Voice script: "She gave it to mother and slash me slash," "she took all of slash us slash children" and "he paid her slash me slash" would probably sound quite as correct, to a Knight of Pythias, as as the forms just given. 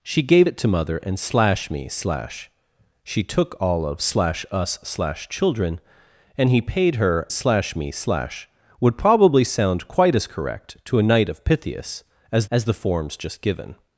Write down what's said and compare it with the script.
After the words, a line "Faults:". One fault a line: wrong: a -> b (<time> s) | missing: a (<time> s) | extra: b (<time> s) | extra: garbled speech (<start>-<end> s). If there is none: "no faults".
"She gave it to mother and slash me slash," "she took all of slash us slash children" and "he paid her slash me slash" would probably sound quite as correct, to a Knight of Pythias, as as the forms just given.
Faults:
no faults